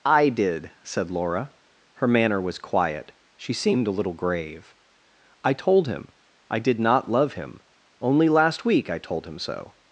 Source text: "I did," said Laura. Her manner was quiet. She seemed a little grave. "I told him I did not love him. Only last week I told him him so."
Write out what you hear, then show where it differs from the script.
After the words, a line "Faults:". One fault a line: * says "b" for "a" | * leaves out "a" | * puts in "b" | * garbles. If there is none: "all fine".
"I did," said Laura. Her manner was quiet. She seemed a little grave. "I told him I did not love him. Only last week I told him so."
Faults:
* leaves out "him"